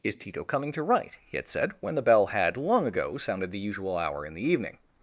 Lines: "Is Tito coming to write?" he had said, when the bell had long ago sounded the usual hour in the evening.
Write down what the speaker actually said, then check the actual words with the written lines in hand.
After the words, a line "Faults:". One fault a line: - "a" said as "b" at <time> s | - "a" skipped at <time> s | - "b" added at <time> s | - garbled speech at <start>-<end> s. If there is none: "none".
"Is Tito coming to write?" he had said, when the bell had long ago sounded the usual hour in the evening.
Faults:
none